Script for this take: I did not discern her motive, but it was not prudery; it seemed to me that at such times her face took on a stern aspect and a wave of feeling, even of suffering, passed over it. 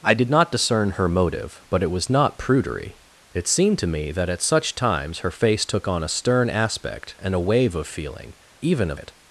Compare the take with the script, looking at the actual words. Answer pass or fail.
fail